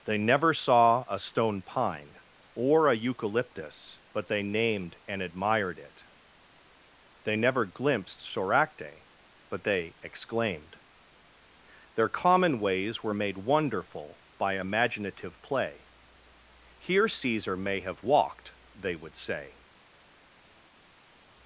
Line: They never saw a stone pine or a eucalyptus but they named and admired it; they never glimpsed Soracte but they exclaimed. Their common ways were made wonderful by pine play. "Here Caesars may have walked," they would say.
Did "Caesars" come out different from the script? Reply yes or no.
yes